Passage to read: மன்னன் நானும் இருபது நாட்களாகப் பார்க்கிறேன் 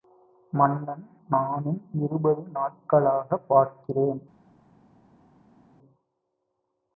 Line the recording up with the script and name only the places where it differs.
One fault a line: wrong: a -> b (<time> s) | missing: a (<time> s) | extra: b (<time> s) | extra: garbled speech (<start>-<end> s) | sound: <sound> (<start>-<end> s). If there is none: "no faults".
no faults